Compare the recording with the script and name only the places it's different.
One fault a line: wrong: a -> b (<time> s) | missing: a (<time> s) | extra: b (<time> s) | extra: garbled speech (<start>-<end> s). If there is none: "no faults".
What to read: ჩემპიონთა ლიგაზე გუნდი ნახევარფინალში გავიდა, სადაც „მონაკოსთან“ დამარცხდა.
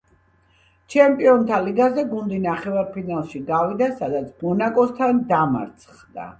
no faults